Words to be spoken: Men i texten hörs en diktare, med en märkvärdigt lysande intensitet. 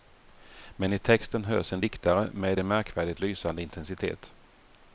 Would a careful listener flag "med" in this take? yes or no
no